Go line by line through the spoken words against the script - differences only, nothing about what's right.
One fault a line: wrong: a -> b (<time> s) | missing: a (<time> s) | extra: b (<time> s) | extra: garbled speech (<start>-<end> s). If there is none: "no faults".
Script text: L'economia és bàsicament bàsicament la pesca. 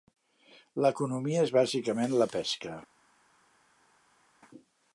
missing: bàsicament (2.2 s)